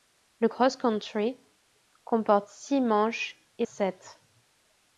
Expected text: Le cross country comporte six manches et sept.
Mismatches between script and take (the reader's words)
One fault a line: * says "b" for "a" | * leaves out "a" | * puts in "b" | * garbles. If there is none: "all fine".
all fine